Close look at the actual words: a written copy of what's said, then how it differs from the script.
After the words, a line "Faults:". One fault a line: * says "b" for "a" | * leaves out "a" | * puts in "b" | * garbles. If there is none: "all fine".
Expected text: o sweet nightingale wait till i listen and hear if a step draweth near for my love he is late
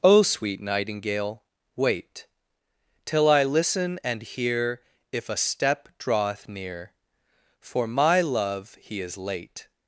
o sweet nightingale wait till i listen and hear if a step draweth near for my love he is late
Faults:
all fine